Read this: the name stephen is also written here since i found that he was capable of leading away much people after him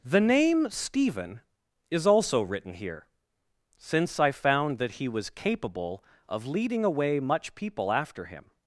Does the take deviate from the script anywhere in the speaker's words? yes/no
no